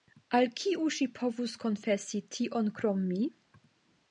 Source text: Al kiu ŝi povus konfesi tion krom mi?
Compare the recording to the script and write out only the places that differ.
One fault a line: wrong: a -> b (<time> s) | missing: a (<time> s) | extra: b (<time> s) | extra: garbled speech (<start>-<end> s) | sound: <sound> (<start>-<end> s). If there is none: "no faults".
no faults